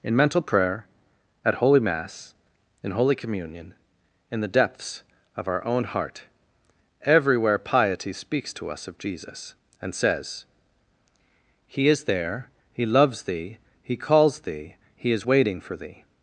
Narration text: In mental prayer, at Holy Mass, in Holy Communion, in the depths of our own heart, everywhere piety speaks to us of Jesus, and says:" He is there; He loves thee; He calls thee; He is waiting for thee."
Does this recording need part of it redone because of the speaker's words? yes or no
no